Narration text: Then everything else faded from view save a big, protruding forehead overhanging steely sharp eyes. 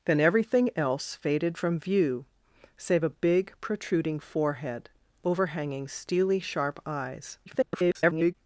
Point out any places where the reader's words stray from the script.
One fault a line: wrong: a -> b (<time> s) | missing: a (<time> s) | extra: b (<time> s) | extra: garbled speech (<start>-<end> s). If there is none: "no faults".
extra: garbled speech (7.5-8.4 s)